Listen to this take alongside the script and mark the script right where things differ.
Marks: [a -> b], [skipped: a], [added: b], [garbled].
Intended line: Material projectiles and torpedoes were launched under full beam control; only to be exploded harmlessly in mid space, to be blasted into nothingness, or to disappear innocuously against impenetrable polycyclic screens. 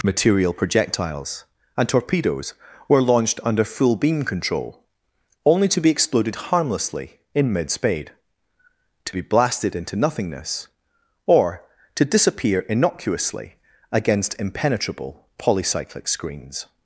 Material projectiles and torpedoes were launched under full beam control; only to be exploded harmlessly in mid [space, -> spade] to be blasted into nothingness, or to disappear innocuously against impenetrable polycyclic screens.